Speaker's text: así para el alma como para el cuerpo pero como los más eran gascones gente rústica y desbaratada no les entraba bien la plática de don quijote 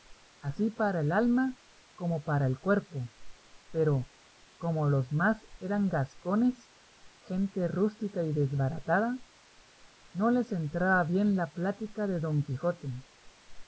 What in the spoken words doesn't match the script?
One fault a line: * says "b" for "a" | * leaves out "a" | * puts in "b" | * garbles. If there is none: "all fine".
all fine